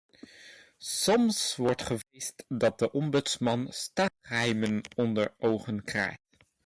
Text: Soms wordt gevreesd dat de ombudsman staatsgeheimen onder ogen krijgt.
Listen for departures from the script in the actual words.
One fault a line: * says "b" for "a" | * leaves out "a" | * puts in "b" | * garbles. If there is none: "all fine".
all fine